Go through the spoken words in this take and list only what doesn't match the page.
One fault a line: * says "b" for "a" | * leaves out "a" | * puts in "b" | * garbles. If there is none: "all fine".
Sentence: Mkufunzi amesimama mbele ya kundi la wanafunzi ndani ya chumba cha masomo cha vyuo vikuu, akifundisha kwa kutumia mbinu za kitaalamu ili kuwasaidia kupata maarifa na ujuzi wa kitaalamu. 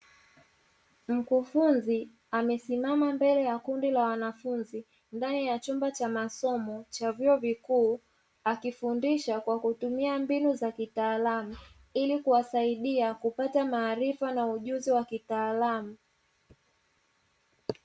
all fine